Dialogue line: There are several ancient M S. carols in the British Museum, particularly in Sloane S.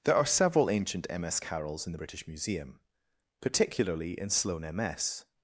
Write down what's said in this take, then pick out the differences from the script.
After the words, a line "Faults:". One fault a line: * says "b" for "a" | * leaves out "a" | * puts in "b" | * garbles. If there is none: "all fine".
There are several ancient M S. carols in the British Museum, particularly in Sloane M S.
Faults:
* puts in "M"